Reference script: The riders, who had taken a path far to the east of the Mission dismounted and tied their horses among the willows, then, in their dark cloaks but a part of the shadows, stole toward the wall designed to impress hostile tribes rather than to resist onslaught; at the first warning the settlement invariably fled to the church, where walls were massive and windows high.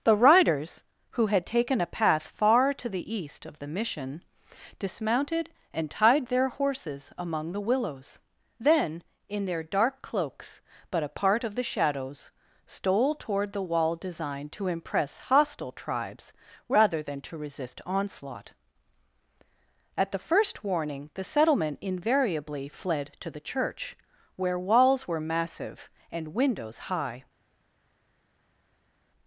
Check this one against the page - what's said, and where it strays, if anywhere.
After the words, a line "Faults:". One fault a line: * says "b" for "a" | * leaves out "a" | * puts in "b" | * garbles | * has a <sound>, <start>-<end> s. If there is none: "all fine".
The riders, who had taken a path far to the east of the Mission dismounted and tied their horses among the willows, then, in their dark cloaks but a part of the shadows, stole toward the wall designed to impress hostile tribes rather than to resist onslaught; at the first warning the settlement invariably fled to the church, where walls were massive and windows high.
Faults:
all fine